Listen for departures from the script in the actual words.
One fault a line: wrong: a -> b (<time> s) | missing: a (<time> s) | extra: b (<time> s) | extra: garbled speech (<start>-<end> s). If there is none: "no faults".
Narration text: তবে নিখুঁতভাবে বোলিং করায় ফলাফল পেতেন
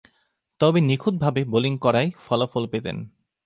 no faults